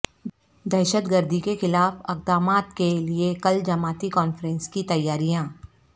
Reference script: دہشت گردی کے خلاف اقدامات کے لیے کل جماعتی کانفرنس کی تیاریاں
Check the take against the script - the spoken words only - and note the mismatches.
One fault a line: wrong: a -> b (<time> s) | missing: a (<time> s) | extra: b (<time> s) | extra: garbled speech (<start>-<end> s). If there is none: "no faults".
no faults